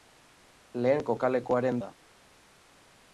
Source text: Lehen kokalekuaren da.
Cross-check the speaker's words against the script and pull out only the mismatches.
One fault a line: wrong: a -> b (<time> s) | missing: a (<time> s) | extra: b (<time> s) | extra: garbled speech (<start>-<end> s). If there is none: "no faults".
no faults